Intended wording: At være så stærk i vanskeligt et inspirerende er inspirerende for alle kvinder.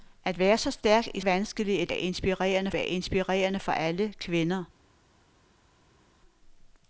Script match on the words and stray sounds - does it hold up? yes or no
yes